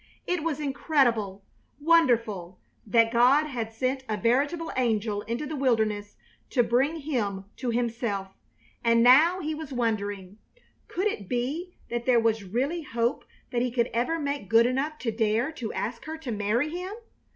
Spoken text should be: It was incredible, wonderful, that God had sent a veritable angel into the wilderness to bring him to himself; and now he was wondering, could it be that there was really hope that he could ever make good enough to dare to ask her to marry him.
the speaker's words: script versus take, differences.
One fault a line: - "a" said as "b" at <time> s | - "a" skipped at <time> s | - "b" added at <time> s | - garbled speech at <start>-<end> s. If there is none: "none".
none